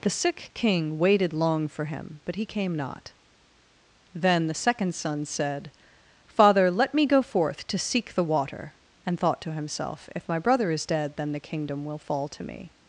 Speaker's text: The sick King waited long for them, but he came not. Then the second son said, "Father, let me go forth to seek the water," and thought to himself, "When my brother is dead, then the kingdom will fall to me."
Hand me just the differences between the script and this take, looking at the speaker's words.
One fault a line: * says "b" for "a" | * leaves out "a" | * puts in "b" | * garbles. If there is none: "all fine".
* says "him" for "them"
* says "If" for "When"